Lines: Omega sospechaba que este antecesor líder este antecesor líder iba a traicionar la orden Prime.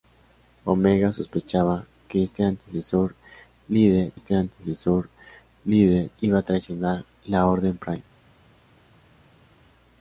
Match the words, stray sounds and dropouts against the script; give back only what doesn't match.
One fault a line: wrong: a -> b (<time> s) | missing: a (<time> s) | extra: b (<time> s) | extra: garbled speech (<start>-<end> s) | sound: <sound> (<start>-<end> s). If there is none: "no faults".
no faults